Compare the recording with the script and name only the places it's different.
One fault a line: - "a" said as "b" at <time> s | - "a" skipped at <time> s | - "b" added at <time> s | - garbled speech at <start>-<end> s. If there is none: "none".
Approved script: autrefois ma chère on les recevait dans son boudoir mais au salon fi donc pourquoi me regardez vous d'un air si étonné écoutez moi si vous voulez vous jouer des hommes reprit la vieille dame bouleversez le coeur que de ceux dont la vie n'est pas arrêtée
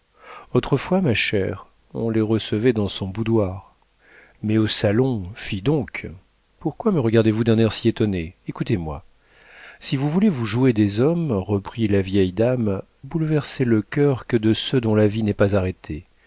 none